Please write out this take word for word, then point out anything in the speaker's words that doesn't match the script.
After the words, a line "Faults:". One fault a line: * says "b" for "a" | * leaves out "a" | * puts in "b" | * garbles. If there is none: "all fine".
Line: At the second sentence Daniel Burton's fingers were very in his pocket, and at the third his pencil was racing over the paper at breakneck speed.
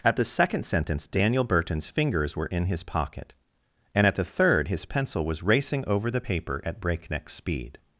At the second sentence Daniel Burton's fingers were in his pocket, and at the third his pencil was racing over the paper at breakneck speed.
Faults:
* leaves out "very"